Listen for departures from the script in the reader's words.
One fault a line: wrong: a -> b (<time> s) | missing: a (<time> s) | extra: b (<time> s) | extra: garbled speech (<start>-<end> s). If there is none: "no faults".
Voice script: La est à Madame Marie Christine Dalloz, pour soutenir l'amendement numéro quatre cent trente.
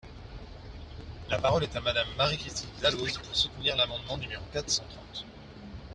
extra: parole (1.4 s)